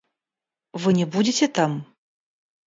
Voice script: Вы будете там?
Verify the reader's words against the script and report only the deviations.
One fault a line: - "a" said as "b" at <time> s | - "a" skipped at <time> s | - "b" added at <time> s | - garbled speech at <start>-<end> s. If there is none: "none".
- "не" added at 0.9 s